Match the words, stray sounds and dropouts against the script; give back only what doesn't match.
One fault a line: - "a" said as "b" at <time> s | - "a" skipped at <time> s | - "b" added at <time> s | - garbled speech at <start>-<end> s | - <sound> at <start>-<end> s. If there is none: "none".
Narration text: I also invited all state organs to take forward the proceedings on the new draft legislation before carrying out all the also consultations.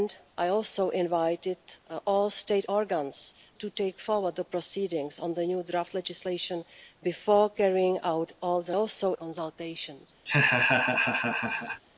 - laugh at 10.3-11.8 s